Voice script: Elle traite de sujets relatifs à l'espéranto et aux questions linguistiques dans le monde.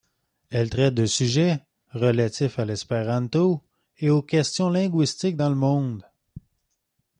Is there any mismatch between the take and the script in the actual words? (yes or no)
no